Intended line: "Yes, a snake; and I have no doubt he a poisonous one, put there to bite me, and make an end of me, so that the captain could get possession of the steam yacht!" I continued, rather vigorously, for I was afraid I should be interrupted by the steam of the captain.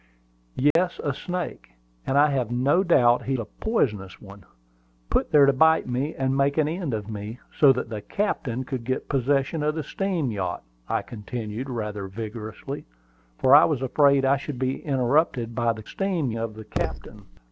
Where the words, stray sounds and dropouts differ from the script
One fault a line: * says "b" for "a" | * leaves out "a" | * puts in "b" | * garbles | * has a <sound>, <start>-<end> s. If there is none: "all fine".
* has a dropout, 0.7-0.8 s